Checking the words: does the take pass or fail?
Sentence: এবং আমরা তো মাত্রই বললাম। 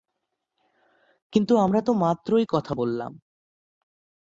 fail